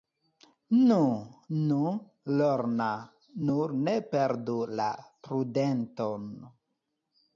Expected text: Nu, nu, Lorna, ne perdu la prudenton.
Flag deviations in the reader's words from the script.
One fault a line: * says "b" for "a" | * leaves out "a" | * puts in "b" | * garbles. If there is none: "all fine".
* puts in "nur"